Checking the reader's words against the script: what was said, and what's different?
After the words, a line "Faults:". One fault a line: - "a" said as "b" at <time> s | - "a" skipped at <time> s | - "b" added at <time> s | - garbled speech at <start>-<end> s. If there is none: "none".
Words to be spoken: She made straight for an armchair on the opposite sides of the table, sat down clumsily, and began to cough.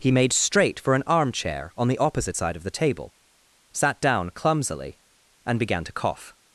He made straight for an armchair on the opposite side of the table, sat down clumsily, and began to cough.
Faults:
- "She" said as "He" at 0.0 s
- "sides" said as "side" at 2.3 s